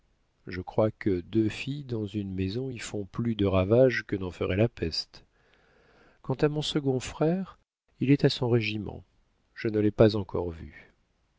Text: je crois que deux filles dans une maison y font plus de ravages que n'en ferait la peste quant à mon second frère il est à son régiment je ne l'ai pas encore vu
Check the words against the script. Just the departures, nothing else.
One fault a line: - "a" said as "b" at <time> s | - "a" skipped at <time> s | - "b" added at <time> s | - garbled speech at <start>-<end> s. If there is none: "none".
none